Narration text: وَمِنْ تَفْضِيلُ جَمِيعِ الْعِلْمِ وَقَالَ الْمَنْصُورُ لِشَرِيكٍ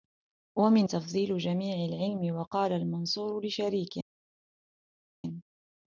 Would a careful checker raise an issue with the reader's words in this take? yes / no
no